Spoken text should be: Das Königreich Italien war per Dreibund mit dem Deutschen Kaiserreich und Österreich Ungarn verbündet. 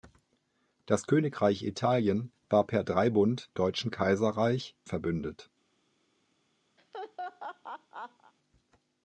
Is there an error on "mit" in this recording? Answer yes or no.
yes